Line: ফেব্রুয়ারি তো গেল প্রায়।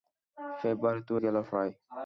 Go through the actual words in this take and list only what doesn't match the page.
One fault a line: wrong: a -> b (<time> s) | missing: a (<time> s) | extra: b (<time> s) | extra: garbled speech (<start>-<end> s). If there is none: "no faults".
no faults